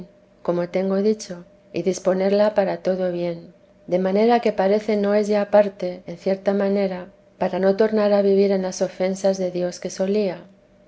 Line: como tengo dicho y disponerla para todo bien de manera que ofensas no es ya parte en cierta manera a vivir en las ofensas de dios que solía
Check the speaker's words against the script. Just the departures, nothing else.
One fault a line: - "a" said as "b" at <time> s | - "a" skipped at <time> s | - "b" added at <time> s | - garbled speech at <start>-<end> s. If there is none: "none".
- "ofensas" said as "parece" at 4.5 s
- "para no tornar" added at 7.4 s